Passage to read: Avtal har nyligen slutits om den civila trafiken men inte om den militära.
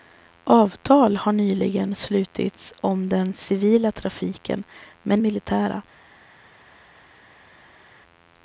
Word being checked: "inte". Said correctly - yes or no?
no